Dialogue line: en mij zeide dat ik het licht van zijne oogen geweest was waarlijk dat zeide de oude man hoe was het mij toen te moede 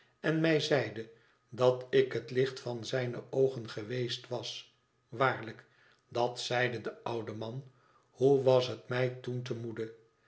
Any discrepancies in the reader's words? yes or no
no